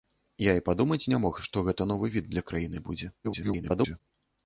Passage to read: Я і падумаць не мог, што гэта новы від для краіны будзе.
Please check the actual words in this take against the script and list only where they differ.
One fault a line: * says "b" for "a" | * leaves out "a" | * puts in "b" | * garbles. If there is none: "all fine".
* garbles